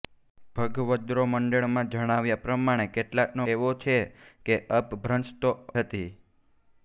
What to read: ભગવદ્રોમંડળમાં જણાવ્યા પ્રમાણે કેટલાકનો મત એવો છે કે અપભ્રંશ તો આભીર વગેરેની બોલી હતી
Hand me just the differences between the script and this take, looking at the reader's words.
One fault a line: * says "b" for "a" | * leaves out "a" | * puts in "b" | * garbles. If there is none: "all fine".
* leaves out "મત"
* leaves out "આભીર વગેરેની બોલી"